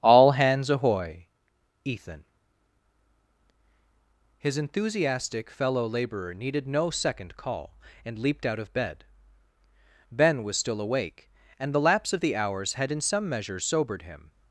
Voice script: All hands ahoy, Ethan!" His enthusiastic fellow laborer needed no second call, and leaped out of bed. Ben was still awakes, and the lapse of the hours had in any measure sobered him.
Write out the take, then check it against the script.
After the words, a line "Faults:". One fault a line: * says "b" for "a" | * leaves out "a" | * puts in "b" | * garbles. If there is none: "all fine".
All hands ahoy, Ethan!" His enthusiastic fellow laborer needed no second call, and leaped out of bed. Ben was still awake, and the lapse of the hours had in some measure sobered him.
Faults:
* says "awake" for "awakes"
* says "some" for "any"